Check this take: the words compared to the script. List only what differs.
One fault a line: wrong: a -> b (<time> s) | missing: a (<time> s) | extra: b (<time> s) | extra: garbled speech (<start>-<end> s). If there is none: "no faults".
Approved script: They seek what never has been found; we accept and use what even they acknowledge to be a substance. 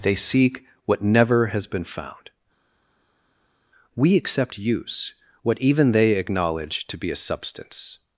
missing: and (4.6 s)